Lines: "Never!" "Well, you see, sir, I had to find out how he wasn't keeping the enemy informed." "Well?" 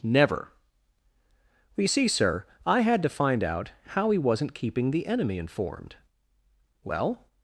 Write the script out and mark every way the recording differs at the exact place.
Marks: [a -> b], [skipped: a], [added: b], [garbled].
"Never!" "Well, you see, sir, I had to find out how he wasn't keeping the enemy informed." "Well?"